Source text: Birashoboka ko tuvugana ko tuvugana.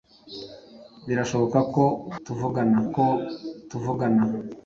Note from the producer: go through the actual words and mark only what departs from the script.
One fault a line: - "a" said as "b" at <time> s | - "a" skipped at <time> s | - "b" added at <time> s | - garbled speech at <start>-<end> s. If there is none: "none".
none